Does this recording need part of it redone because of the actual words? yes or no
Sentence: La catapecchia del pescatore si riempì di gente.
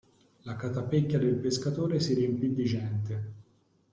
no